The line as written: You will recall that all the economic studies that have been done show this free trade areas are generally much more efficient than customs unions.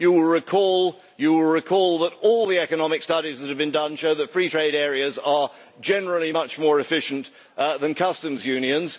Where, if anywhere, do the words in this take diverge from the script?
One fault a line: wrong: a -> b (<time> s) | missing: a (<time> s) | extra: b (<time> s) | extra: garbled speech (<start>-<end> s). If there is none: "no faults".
wrong: this -> that (4.1 s)